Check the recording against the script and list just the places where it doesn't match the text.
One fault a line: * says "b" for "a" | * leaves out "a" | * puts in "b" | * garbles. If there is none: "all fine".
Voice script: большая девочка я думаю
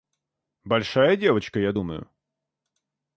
all fine